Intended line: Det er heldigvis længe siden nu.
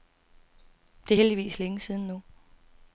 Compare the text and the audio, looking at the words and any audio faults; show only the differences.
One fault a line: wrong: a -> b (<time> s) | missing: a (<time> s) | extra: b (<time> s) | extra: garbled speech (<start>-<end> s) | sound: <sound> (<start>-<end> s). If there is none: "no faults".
no faults